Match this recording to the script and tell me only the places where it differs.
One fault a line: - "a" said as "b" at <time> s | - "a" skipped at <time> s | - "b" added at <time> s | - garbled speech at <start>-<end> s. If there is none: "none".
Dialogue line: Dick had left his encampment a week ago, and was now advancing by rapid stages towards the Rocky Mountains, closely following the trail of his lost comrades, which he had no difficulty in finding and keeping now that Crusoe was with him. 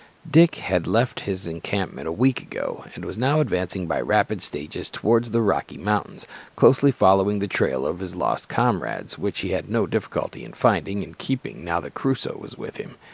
none